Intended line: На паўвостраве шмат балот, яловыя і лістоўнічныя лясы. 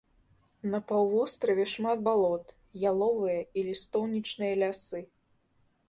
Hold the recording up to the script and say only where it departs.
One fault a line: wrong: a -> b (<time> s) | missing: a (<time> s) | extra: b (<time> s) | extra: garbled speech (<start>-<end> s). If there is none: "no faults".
no faults